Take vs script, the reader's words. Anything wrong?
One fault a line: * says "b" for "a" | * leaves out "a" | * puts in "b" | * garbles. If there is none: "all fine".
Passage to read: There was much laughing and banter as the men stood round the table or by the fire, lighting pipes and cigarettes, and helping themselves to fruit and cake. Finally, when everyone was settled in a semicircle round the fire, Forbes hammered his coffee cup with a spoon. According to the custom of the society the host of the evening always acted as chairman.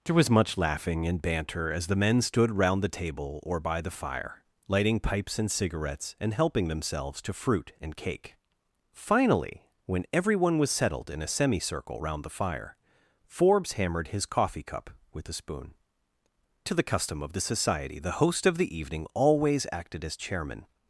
* leaves out "According"